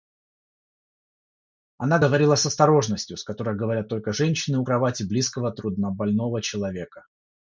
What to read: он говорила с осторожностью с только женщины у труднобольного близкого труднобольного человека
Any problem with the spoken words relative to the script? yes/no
yes